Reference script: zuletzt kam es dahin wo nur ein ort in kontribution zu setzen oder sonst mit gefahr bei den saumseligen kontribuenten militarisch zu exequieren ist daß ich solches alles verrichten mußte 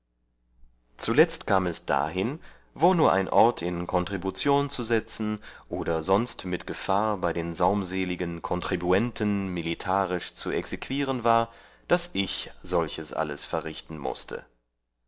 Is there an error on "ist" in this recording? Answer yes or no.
yes